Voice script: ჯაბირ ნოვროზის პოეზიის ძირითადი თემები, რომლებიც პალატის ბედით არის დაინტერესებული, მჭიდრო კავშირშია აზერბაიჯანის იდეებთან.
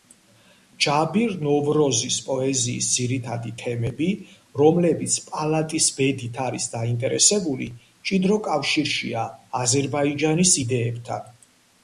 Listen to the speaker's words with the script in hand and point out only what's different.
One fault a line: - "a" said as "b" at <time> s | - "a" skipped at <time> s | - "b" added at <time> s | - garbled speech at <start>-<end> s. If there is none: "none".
none